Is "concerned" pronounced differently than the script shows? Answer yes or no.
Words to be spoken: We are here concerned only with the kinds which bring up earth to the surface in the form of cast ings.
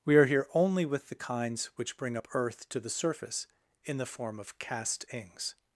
yes